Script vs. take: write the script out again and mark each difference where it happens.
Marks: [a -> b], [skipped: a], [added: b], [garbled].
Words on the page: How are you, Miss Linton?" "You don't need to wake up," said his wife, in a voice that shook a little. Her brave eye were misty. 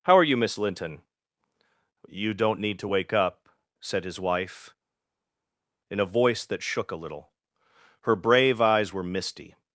How are you, Miss Linton?" "You don't need to wake up," said his wife, in a voice that shook a little. Her brave [eye -> eyes] were misty.